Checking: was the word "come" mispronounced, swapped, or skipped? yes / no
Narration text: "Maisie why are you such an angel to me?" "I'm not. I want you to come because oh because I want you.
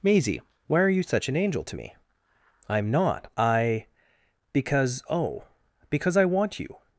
yes